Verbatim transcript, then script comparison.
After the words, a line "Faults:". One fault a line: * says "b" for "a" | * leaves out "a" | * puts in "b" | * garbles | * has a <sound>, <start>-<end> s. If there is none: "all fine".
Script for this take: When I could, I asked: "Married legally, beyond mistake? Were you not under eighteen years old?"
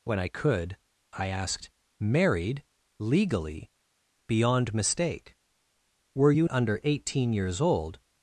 When I could, I asked: "Married legally, beyond mistake? Were you under eighteen years old?"
Faults:
* leaves out "not"